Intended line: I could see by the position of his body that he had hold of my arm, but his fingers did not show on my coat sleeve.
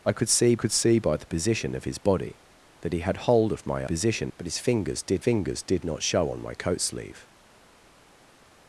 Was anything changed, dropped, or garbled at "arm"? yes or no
yes